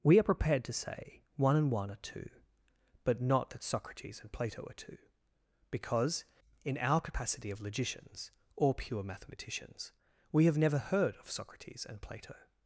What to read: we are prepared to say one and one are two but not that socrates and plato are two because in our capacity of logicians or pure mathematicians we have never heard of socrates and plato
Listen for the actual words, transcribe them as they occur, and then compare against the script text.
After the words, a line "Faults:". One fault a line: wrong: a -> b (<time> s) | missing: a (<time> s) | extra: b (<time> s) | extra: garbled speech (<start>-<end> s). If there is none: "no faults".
we are prepared to say one and one are two but not that socrates and plato are two because in our capacity of logicians or pure mathematicians we have never heard of socrates and plato
Faults:
no faults